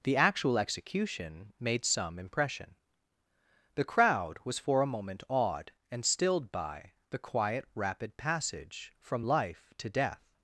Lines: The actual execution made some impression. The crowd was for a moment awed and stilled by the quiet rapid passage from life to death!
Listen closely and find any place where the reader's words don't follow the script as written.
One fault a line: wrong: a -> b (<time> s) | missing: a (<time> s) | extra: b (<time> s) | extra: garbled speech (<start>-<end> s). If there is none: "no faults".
no faults